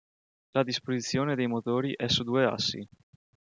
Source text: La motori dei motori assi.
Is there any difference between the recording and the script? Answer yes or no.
yes